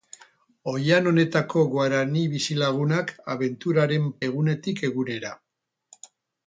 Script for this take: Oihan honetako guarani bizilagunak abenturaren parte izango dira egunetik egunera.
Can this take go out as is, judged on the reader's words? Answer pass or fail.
fail